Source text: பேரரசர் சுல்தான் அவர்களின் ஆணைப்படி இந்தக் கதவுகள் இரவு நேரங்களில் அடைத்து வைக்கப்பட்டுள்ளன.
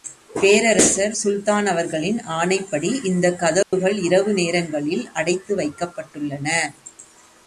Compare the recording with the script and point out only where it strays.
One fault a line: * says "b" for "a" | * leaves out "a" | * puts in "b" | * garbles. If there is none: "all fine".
all fine